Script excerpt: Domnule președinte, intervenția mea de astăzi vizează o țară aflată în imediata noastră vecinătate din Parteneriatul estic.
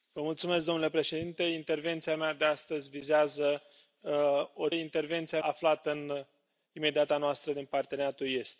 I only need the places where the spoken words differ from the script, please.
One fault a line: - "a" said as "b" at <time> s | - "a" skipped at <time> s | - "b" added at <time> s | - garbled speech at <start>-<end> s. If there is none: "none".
- "țară" said as "intervenția" at 4.7 s
- "vecinătate" skipped at 7.5 s